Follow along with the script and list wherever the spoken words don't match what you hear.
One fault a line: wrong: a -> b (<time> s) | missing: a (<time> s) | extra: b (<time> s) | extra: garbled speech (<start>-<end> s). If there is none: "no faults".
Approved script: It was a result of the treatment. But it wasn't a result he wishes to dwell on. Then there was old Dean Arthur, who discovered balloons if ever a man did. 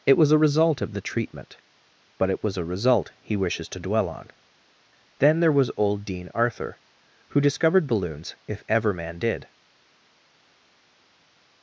wrong: wasn't -> was (2.4 s)
missing: a (8.9 s)